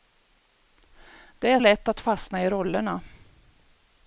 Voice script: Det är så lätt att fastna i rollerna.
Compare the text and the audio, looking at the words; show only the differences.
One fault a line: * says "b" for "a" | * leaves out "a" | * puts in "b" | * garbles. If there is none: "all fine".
* leaves out "så"